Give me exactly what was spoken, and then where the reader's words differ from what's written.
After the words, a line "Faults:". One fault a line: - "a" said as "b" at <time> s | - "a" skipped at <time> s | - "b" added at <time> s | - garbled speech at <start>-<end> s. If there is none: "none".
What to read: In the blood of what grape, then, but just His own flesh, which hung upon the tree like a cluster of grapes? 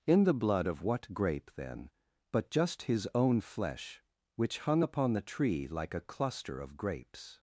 In the blood of what grape, then, but just His own flesh, which hung upon the tree like a cluster of grapes?
Faults:
none